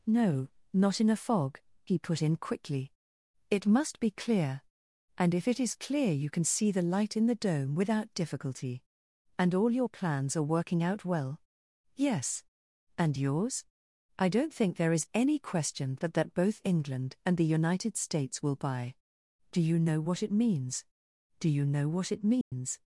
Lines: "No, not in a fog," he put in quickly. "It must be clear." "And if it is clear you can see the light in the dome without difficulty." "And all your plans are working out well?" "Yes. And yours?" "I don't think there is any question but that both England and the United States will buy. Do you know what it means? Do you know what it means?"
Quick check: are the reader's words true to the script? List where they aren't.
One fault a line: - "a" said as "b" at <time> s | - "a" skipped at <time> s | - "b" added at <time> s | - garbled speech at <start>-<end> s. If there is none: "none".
- "but" said as "that" at 16.0 s